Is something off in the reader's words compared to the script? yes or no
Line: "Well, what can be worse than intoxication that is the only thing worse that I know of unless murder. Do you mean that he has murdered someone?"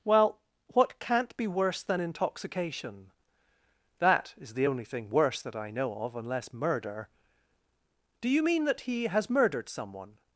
yes